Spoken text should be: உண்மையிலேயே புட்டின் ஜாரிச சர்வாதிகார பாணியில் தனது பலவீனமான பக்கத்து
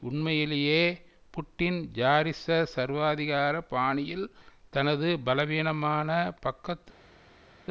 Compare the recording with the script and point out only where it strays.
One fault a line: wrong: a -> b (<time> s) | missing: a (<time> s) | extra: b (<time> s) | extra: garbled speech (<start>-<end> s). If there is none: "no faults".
no faults